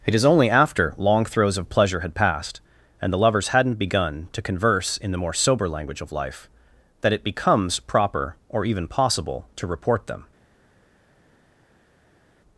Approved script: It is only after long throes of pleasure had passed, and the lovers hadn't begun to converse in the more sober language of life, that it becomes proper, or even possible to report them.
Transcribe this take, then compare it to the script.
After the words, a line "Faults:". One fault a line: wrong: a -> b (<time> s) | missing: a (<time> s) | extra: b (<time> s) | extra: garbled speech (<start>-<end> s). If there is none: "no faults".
It is only after long throes of pleasure had passed, and the lovers hadn't begun to converse in the more sober language of life, that it becomes proper, or even possible to report them.
Faults:
no faults